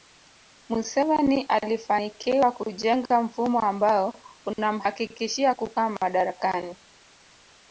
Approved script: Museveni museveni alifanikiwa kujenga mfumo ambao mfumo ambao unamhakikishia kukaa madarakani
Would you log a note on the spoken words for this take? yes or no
yes